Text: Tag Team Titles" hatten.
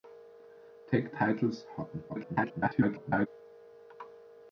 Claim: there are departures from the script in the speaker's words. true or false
true